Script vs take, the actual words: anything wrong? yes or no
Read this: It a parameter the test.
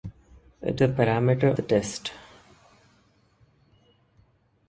no